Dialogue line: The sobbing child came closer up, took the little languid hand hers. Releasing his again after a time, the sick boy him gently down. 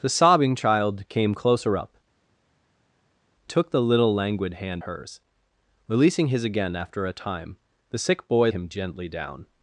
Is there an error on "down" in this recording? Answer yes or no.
no